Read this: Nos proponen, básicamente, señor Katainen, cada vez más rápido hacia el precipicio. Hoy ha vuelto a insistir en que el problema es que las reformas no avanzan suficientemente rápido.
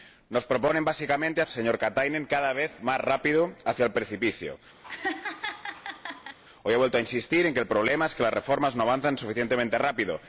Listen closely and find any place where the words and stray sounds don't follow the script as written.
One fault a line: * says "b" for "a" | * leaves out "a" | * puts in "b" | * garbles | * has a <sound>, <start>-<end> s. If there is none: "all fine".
* has a laugh, 4.8-6.4 s